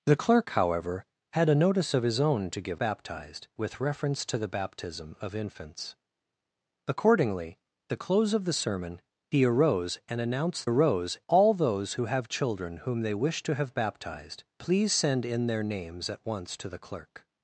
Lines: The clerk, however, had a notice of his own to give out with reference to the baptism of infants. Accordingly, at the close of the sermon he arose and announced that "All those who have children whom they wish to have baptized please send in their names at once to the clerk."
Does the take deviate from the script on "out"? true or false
true